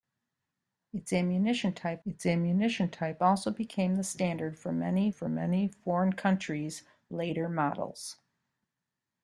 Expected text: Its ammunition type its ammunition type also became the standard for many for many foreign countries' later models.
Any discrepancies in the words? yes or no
no